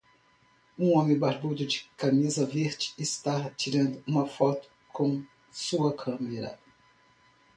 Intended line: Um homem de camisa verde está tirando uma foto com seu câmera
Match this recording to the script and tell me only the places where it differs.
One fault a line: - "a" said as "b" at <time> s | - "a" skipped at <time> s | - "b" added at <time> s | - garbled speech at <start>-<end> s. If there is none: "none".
- "barbudo" added at 1.1 s
- "seu" said as "sua" at 5.5 s